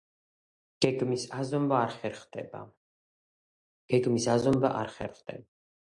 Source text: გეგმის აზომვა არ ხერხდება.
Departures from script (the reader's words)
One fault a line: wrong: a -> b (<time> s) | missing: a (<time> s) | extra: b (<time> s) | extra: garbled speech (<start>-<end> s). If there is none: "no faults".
no faults